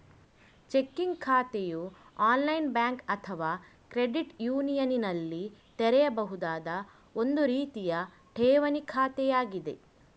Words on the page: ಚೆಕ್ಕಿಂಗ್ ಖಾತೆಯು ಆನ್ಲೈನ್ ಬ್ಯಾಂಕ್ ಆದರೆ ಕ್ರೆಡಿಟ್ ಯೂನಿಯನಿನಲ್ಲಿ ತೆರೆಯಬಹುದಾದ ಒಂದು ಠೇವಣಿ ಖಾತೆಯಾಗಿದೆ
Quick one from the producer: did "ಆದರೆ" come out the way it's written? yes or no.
no